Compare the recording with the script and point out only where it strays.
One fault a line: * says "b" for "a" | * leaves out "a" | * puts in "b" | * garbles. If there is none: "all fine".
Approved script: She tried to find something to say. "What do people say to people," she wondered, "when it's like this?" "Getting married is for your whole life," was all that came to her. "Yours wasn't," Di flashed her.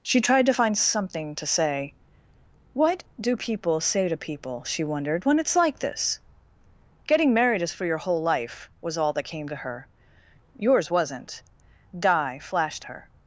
all fine